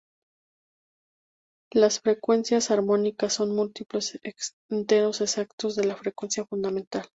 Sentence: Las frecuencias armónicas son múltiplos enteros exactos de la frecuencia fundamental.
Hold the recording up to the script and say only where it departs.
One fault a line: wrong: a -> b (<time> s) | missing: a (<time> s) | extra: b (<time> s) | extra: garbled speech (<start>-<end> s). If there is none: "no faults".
no faults